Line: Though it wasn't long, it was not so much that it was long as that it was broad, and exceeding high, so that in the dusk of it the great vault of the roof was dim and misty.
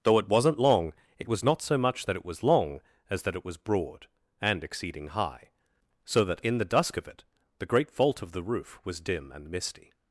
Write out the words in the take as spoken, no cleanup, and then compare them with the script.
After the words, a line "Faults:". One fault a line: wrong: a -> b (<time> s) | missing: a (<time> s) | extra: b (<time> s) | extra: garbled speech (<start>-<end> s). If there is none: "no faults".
Though it wasn't long, it was not so much that it was long as that it was broad, and exceeding high, so that in the dusk of it the great vault of the roof was dim and misty.
Faults:
no faults